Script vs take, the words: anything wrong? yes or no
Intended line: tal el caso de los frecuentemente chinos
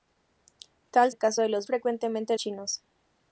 no